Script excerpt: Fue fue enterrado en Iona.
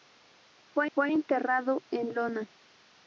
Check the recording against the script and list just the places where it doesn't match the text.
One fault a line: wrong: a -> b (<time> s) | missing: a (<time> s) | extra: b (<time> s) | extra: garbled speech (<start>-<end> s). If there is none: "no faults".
no faults